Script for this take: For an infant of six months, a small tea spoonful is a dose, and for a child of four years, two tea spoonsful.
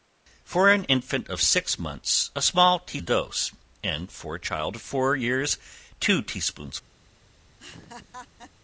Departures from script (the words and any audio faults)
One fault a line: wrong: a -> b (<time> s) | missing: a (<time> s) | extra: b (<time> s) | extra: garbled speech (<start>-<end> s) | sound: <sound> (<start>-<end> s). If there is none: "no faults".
missing: spoonful is (3.0 s)
sound: laugh (7.6-8.5 s)